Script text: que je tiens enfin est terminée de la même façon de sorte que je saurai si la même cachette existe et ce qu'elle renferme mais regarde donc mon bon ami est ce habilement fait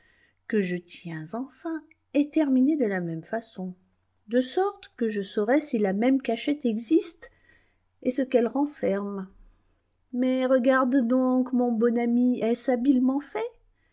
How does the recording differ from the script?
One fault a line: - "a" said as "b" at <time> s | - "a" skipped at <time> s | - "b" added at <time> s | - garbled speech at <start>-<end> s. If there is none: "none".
none